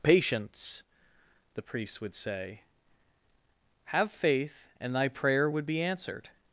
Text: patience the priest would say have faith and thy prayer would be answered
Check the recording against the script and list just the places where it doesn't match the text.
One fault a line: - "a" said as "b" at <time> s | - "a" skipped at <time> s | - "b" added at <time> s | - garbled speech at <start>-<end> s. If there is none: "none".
none